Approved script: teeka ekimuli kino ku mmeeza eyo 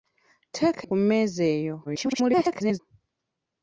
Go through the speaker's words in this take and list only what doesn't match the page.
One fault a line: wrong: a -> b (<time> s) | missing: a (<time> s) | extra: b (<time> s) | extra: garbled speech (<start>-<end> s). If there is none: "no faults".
missing: ekimuli kino (0.8 s)
extra: garbled speech (1.8-2.8 s)